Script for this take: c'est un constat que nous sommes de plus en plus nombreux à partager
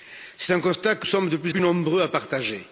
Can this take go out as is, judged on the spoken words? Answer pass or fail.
fail